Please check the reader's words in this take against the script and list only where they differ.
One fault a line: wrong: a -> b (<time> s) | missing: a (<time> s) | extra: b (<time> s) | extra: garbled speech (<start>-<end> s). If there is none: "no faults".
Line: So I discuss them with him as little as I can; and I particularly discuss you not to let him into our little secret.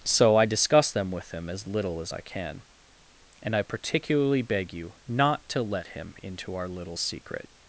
wrong: discuss -> beg (4.4 s)